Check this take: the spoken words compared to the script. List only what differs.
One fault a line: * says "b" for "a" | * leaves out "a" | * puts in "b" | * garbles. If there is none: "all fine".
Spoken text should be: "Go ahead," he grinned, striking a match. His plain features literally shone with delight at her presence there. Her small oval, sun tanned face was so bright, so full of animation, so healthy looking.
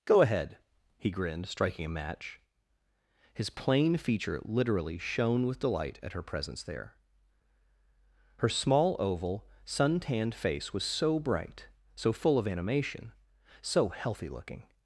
* says "feature" for "features"